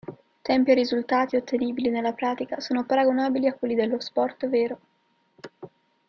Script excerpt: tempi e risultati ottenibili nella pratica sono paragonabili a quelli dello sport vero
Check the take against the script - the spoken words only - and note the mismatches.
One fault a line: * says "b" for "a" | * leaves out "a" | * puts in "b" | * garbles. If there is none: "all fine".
all fine